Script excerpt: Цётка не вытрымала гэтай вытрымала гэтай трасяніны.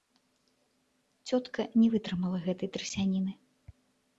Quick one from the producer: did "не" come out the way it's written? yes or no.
yes